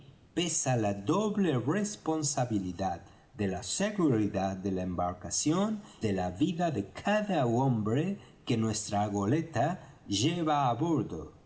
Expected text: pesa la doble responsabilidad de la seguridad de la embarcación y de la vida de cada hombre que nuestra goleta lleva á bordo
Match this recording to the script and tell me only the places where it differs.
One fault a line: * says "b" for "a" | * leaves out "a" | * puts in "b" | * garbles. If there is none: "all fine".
* leaves out "y"